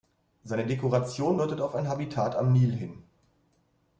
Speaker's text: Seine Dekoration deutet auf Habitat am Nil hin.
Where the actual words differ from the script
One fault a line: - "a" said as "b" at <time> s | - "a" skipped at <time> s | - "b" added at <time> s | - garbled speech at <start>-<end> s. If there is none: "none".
- "ein" added at 1.7 s